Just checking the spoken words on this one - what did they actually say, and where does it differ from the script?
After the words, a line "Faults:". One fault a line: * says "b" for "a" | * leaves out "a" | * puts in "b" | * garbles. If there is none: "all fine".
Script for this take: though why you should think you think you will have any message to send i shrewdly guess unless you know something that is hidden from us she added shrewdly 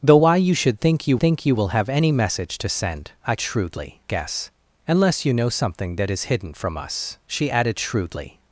though why you should think you think you will have any message to send i shrewdly guess unless you know something that is hidden from us she added shrewdly
Faults:
all fine